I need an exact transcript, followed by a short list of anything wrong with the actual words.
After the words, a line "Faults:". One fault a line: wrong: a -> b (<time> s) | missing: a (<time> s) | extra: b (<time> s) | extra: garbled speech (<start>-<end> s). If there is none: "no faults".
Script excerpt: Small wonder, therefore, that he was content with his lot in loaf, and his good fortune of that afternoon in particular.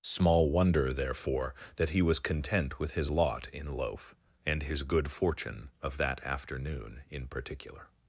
Small wonder, therefore, that he was content with his lot in loaf, and his good fortune of that afternoon in particular.
Faults:
no faults